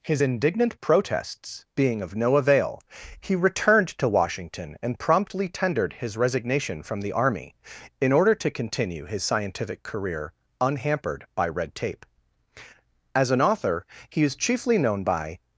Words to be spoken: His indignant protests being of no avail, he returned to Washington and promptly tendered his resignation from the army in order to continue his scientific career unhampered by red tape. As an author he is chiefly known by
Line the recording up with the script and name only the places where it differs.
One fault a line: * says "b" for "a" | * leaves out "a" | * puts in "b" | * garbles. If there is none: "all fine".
all fine